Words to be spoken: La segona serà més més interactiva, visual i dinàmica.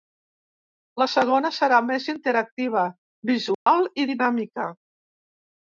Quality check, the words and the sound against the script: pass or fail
fail